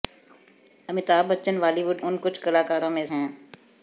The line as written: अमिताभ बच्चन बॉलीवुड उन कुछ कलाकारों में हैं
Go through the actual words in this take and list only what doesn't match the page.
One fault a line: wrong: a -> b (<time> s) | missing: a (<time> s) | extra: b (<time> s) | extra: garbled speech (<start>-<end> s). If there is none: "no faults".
no faults